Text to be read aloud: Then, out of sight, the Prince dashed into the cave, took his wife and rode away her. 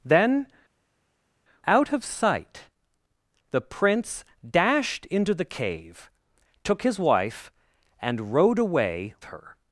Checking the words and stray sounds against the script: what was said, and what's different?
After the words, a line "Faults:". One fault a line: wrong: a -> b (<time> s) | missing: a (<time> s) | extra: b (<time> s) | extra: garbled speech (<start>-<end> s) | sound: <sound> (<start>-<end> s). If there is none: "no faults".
Then, out of sight, the Prince dashed into the cave, took his wife and rode away her.
Faults:
no faults